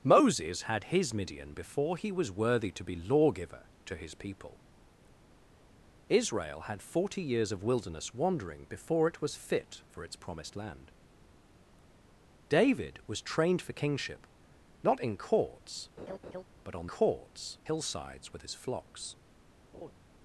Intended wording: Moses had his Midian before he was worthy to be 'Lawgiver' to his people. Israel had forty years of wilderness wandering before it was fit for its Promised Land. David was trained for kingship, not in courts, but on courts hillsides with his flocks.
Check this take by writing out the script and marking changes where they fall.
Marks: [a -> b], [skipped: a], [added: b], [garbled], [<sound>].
Moses had his Midian before he was worthy to be 'Lawgiver' to his people. Israel had forty years of wilderness wandering before it was fit for its Promised Land. David was trained for kingship, not in courts, [laugh] but on courts hillsides with his flocks. [laugh]